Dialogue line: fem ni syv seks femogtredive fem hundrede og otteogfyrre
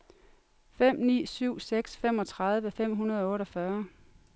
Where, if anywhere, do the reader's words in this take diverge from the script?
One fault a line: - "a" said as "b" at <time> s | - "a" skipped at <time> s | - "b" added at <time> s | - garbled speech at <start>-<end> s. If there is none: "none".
none